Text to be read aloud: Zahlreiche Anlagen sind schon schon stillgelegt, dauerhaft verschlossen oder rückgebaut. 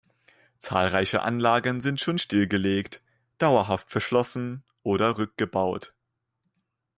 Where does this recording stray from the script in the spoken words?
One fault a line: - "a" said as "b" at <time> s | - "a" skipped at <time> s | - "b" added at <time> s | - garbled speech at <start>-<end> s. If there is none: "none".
- "schon" skipped at 2.2 s